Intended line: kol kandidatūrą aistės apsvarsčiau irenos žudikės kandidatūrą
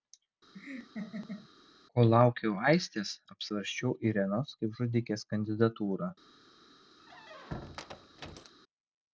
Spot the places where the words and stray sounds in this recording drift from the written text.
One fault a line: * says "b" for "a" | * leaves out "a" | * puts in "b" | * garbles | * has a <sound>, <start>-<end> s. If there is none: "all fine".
* has a laugh, 0.5-1.5 s
* says "laukiau" for "kandidatūrą"
* puts in "kaip"
* has a squeak, 7.0-8.5 s